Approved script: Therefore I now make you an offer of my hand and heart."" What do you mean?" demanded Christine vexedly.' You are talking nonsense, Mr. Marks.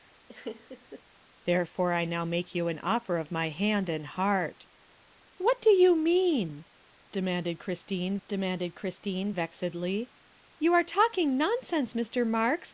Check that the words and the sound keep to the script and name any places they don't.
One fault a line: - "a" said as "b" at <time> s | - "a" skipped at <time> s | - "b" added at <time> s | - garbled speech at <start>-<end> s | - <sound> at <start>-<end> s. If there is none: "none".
- laugh at 0.3-1.0 s
- "demanded Christine" added at 8.3 s